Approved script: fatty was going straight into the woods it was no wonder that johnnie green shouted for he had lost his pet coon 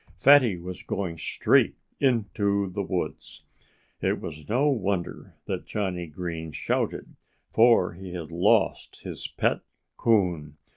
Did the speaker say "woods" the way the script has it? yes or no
yes